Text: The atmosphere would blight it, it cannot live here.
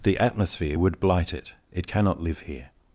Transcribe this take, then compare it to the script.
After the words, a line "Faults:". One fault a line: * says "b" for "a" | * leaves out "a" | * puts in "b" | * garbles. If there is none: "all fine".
The atmosphere would blight it, it cannot live here.
Faults:
all fine